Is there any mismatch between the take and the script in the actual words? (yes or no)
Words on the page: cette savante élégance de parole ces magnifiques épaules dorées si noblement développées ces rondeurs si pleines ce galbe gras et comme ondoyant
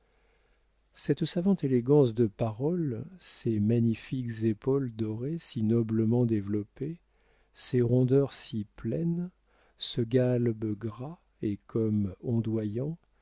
no